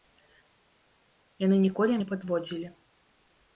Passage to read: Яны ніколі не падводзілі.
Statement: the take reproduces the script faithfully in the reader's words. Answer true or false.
true